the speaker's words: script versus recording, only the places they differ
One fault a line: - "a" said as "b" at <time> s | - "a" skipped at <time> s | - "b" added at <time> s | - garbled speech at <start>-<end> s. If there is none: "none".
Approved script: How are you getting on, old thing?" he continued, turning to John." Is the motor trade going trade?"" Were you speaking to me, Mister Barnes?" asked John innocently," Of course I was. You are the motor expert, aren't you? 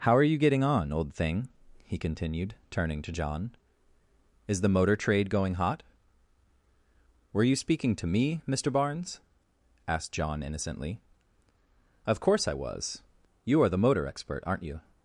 - "trade" said as "hot" at 5.6 s